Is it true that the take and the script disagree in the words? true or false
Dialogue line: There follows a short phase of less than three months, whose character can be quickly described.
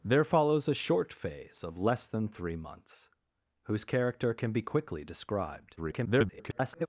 true